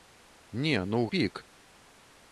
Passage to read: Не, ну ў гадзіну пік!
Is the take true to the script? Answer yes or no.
no